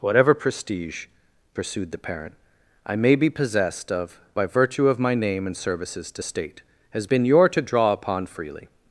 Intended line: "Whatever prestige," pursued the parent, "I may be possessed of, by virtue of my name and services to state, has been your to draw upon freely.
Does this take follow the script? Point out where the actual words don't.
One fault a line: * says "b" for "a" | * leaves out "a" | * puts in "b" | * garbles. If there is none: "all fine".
all fine